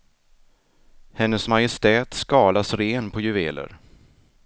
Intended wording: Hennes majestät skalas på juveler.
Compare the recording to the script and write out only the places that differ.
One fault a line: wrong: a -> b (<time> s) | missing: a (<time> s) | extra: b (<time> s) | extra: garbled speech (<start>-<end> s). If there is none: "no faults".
extra: ren (2.7 s)